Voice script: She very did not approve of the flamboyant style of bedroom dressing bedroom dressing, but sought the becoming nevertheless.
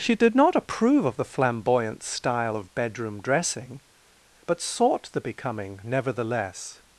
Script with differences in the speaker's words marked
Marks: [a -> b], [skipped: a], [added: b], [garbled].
She [skipped: very] did not approve of the flamboyant style of bedroom dressing [skipped: bedroom dressing,] but sought the becoming nevertheless.